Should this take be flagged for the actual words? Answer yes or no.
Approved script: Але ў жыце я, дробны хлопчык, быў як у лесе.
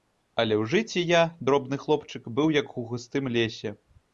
yes